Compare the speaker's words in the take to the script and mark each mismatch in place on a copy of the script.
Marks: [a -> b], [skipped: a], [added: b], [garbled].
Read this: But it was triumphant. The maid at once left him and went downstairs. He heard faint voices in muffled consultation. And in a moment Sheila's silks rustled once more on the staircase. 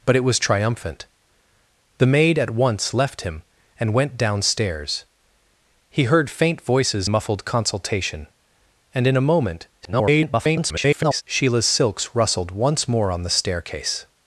But it was triumphant. The maid at once left him and went downstairs. He heard faint voices [skipped: in] muffled consultation. And in a moment [garbled] Sheila's silks rustled once more on the staircase.